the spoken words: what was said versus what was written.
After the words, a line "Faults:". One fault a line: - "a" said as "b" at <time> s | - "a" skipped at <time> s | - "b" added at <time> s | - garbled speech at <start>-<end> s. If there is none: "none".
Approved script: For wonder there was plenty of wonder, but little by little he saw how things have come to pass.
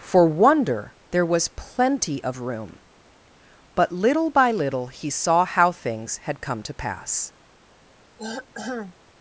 For wonder there was plenty of room, but little by little he saw how things had come to pass.
Faults:
- "wonder" said as "room" at 2.4 s
- "have" said as "had" at 6.2 s